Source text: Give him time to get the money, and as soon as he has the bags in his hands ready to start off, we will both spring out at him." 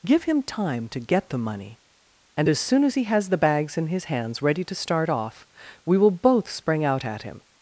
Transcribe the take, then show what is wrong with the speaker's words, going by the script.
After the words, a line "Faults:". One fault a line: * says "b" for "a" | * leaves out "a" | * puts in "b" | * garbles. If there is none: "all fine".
Give him time to get the money, and as soon as he has the bags in his hands ready to start off, we will both spring out at him."
Faults:
all fine